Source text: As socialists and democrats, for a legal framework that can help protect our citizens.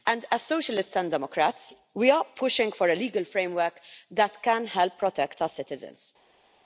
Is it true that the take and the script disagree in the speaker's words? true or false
true